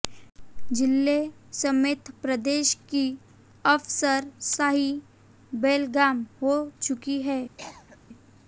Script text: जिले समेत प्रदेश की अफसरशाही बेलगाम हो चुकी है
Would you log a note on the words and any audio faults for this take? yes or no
yes